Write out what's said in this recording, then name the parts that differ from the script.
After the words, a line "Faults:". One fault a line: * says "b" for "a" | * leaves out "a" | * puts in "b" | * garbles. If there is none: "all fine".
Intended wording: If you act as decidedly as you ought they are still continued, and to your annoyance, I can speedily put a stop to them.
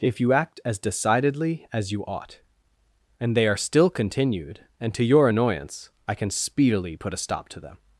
If you act as decidedly as you ought and they are still continued, and to your annoyance, I can speedily put a stop to them.
Faults:
* puts in "and"